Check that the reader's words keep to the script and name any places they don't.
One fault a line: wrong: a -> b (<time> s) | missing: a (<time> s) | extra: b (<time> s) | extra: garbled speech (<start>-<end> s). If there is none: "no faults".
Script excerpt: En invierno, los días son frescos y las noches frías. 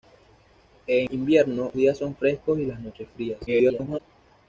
missing: los (1.7 s)
extra: garbled speech (3.5-4.0 s)